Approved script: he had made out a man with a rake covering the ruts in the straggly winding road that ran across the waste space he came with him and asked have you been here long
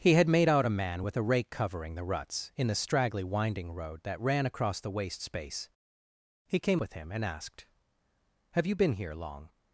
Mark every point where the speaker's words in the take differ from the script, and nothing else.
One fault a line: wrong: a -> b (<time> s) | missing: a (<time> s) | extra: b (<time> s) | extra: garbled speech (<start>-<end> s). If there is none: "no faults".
no faults